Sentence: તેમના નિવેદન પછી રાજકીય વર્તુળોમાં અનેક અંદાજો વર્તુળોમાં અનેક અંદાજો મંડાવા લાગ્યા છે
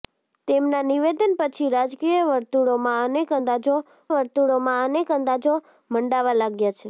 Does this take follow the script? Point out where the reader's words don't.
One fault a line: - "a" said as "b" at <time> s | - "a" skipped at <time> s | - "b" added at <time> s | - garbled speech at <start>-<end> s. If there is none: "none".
none